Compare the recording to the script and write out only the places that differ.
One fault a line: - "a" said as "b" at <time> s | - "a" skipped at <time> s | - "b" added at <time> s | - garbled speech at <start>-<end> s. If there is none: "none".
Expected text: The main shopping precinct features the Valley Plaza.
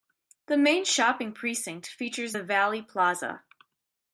none